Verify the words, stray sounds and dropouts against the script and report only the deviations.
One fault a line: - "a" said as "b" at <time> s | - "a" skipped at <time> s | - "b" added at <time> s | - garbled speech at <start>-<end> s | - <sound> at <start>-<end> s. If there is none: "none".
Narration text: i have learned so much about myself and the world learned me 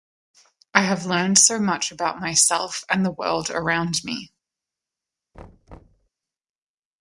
- "learned" said as "around" at 3.5 s
- thud at 5.3-6.1 s